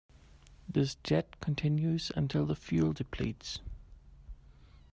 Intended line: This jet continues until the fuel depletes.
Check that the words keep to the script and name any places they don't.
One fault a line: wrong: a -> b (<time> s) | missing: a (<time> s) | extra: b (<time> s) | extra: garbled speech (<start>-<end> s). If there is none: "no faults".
no faults